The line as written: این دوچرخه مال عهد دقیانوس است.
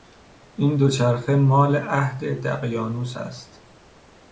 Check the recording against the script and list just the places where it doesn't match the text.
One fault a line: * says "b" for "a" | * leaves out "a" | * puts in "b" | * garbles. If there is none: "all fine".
all fine